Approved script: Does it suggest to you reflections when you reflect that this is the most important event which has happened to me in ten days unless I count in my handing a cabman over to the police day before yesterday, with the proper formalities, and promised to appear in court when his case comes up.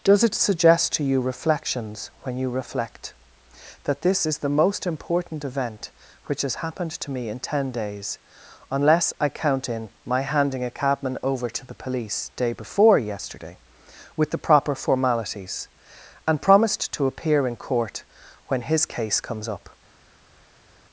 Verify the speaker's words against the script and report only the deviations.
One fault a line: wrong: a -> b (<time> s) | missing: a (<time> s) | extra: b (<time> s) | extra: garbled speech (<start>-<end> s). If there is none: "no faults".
no faults